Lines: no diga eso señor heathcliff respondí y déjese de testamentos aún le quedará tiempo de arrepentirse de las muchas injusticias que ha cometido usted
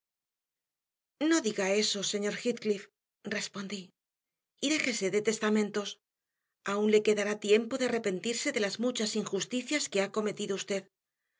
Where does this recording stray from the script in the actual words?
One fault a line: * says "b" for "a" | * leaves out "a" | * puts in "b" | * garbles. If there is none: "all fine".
all fine